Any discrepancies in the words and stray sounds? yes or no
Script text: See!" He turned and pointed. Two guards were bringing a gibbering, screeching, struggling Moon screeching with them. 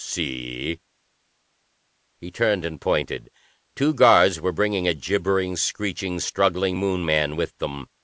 yes